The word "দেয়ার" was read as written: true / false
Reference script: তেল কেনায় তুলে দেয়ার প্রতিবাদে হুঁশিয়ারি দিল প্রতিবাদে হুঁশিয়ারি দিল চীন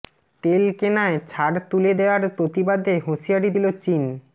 true